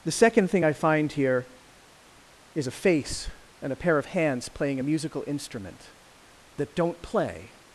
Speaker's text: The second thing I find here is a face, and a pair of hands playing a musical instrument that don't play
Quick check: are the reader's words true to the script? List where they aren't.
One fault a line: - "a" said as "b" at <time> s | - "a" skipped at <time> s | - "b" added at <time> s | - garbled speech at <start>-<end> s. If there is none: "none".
none